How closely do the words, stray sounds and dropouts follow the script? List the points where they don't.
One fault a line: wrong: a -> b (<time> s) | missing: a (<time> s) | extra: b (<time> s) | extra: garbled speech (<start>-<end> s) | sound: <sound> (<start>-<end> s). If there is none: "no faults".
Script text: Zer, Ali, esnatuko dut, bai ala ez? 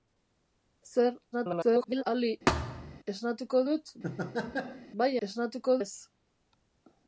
extra: garbled speech (1.3-2.0 s)
sound: thud (2.5-3.0 s)
sound: laugh (4.0-4.9 s)
wrong: ala -> esnatuko (5.3 s)